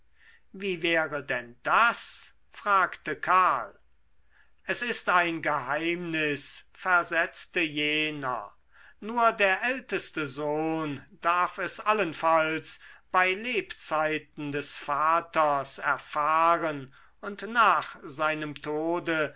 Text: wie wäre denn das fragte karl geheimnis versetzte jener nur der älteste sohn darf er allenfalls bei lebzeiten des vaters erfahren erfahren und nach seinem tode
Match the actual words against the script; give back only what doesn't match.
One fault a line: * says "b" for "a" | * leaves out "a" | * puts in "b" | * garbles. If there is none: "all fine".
* puts in "es ist ein"
* says "es" for "er"
* leaves out "erfahren"